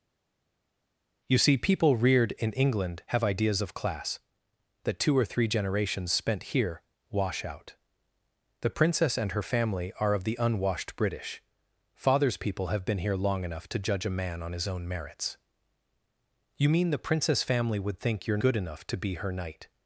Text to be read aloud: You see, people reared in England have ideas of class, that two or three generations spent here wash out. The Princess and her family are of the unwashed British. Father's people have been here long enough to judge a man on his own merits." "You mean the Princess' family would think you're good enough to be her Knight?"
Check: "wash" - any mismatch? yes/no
no